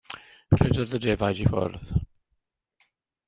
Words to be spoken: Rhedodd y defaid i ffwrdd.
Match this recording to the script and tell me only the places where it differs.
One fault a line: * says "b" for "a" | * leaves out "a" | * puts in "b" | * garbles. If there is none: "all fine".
all fine